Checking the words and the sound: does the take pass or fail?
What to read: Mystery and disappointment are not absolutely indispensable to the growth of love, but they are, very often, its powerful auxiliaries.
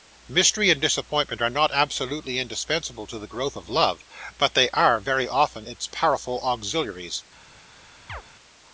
fail